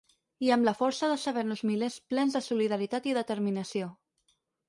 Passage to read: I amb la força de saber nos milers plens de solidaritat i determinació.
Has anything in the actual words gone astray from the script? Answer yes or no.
no